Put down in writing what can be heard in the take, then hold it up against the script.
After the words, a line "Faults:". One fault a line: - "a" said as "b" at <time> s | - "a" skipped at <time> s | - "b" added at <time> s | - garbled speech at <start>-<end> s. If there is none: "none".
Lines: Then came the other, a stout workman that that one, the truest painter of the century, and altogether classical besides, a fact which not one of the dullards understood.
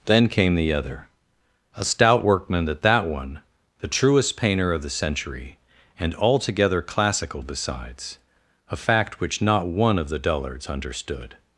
Then came the other, a stout workman that that one, the truest painter of the century, and altogether classical besides, a fact which not one of the dullards understood.
Faults:
none